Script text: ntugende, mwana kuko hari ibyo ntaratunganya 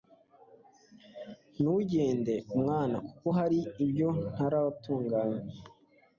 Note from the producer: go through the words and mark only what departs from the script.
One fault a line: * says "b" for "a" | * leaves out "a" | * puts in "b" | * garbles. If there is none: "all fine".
all fine